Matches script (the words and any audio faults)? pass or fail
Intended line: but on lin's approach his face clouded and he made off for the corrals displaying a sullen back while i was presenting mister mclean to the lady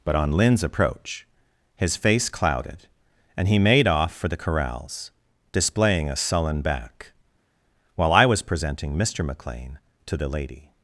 pass